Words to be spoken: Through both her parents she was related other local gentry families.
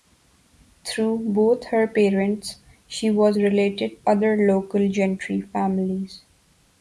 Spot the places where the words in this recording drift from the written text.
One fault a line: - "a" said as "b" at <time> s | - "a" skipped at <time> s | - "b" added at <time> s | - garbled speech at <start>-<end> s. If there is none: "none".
none